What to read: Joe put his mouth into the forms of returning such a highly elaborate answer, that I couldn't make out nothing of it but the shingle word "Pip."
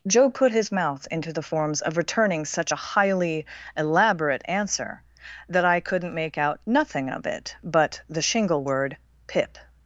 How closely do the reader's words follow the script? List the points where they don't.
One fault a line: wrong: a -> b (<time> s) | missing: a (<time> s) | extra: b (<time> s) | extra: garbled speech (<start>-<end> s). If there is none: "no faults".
no faults